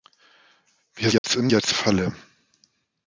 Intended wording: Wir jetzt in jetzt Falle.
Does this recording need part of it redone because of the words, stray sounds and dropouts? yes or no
yes